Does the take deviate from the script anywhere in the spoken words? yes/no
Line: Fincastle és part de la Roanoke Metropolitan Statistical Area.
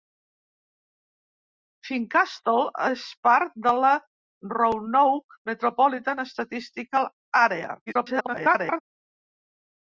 yes